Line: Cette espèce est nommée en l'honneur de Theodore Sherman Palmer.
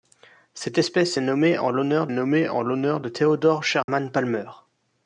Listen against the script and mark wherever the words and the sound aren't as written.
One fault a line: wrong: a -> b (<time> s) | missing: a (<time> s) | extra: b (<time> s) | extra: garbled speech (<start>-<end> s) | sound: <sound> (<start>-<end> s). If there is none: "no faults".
extra: nommée en l'honneur (2.1 s)
sound: dropout (3.8-3.9 s)